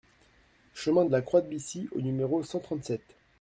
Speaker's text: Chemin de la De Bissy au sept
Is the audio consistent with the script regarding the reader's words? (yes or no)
no